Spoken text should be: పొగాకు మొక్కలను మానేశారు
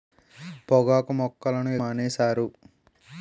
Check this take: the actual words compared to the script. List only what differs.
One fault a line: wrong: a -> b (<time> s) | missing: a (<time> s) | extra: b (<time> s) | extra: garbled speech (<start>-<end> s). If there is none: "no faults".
no faults